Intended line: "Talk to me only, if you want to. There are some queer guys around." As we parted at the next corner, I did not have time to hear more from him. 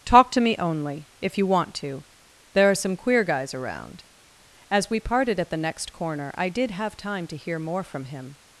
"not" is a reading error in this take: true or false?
true